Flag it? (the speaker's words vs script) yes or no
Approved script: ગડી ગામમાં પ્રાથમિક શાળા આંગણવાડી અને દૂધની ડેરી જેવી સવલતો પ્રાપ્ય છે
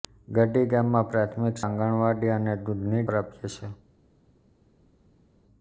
yes